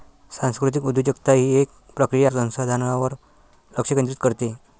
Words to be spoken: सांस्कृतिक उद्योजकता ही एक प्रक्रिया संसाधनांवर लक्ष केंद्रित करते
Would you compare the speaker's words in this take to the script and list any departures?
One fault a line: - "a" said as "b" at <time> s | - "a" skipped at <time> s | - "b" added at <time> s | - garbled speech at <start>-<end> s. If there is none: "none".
none